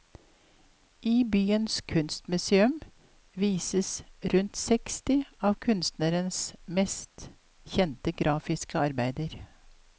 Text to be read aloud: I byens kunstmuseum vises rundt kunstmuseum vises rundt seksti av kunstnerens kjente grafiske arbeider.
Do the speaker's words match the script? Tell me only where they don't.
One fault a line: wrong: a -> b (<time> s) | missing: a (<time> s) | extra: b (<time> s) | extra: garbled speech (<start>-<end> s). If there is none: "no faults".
missing: kunstmuseum vises rundt (4.5 s)
extra: mest (6.7 s)